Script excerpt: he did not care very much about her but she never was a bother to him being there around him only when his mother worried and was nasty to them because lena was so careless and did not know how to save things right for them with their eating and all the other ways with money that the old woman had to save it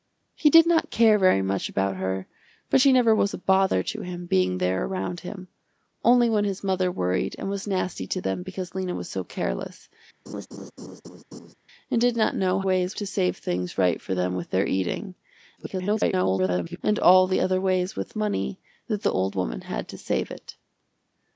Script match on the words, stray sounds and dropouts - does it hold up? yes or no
no